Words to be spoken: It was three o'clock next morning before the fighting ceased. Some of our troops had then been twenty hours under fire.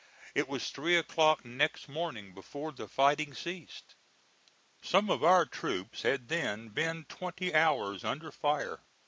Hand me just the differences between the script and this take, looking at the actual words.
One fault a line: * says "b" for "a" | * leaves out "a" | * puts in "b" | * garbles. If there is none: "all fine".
all fine